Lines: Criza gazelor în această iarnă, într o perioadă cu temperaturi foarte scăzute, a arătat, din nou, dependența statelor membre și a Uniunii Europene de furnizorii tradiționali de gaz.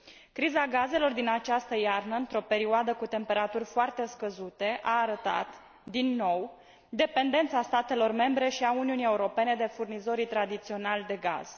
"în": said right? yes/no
no